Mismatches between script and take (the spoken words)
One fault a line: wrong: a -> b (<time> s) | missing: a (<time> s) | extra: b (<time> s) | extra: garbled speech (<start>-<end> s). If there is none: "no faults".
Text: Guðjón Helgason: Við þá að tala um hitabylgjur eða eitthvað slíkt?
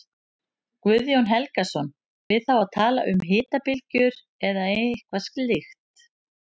no faults